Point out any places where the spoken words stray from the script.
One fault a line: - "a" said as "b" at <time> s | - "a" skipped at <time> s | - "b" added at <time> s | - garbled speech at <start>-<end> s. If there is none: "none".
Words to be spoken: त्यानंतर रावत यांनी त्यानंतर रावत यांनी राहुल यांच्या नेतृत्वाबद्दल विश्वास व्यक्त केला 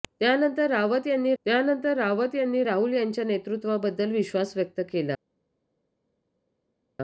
none